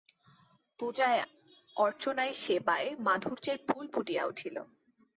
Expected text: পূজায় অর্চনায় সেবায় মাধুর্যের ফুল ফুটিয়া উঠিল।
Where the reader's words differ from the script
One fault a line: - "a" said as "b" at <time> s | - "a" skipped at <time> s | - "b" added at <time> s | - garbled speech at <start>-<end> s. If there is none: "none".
none